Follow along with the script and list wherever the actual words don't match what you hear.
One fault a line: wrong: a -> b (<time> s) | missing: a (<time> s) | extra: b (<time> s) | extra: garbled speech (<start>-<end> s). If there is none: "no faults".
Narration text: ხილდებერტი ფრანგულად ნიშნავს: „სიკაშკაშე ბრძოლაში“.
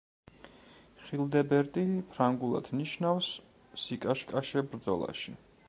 no faults